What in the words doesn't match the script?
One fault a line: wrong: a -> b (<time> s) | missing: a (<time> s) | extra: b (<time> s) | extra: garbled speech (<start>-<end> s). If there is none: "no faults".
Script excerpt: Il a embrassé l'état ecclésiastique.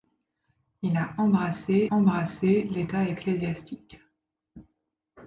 extra: embrassé (1.9 s)